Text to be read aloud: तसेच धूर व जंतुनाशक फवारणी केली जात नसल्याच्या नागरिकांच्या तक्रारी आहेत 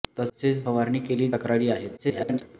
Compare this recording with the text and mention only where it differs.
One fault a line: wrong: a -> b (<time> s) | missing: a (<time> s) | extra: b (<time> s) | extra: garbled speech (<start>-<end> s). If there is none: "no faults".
missing: धूर व जंतुनाशक (0.6 s)
missing: जात नसल्याच्या नागरिकांच्या (1.3 s)
extra: garbled speech (2.0-2.4 s)